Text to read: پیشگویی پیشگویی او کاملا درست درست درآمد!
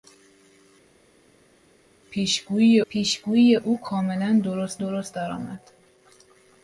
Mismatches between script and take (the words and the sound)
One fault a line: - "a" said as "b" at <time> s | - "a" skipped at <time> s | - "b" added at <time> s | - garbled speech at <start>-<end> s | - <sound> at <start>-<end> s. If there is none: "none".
none